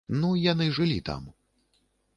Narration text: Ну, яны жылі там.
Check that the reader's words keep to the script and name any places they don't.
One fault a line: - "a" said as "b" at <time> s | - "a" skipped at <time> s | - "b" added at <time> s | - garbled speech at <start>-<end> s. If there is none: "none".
none